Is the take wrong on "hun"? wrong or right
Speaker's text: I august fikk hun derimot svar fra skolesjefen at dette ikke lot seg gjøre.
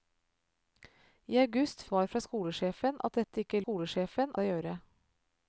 wrong